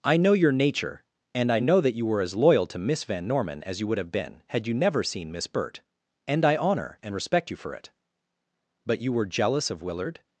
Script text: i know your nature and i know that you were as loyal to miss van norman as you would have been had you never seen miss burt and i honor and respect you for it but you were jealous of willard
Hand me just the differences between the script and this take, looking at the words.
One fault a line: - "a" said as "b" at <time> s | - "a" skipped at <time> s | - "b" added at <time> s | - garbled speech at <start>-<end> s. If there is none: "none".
none